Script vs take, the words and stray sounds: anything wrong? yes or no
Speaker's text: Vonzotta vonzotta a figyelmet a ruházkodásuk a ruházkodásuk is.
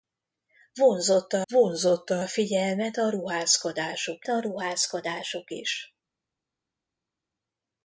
no